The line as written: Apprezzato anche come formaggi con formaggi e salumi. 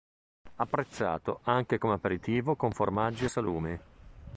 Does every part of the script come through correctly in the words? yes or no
no